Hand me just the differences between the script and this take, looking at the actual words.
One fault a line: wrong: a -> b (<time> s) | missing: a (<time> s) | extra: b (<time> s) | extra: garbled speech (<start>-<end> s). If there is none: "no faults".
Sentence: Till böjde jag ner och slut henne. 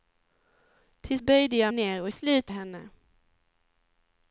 no faults